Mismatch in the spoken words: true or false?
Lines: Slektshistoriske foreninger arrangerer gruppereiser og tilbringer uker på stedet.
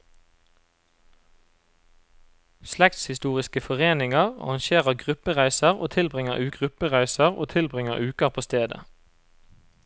true